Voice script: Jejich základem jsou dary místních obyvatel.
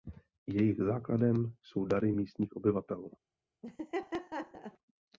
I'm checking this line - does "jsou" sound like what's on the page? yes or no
yes